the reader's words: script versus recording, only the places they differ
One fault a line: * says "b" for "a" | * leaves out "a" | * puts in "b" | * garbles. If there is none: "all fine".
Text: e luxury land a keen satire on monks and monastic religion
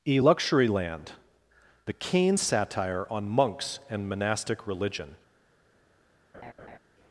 * says "the" for "a"